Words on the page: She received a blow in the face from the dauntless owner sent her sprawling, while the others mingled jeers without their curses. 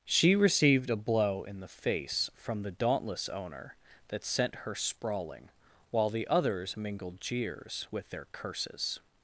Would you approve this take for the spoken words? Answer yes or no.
no